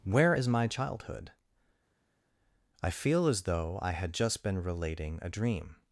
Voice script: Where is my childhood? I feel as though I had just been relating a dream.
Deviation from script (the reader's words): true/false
false